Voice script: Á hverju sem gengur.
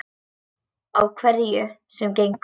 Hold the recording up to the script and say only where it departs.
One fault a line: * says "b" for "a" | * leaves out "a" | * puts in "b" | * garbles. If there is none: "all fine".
all fine